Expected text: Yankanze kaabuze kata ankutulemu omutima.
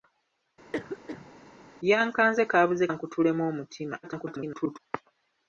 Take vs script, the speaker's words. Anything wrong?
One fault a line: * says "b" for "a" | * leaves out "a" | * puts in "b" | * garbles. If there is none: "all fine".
* leaves out "kata"
* garbles